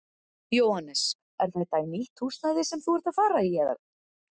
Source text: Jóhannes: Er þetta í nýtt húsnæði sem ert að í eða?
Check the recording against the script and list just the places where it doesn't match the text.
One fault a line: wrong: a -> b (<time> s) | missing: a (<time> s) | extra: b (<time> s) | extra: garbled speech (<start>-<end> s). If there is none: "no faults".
extra: þú (2.9 s)
extra: fara (3.2 s)